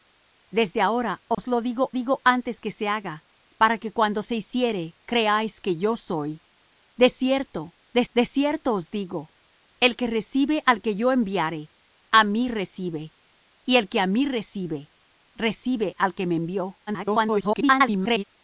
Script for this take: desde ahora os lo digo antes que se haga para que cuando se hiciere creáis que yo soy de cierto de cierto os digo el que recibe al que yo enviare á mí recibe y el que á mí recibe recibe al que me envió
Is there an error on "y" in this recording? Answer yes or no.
no